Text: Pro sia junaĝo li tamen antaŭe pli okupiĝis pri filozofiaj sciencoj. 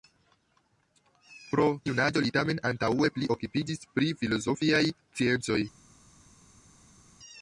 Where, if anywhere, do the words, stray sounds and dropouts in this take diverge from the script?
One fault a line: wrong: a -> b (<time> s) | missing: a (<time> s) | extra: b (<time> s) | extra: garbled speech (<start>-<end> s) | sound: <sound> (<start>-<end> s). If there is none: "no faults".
missing: sia (1.7 s)